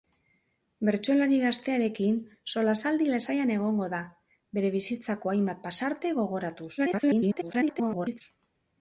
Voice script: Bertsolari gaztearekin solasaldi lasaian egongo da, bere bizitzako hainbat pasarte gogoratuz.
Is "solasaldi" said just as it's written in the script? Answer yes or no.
yes